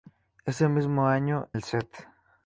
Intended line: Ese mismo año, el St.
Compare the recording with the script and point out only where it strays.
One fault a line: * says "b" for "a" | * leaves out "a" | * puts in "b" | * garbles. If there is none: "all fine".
all fine